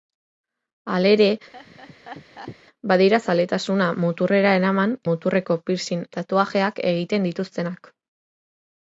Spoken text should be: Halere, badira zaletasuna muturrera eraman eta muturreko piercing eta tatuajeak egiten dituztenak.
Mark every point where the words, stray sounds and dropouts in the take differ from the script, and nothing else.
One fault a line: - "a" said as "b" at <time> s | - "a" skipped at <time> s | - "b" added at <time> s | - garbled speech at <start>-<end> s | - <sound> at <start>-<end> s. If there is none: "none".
- laugh at 1.5-2.6 s
- "eta" skipped at 4.9 s
- "eta" skipped at 6.0 s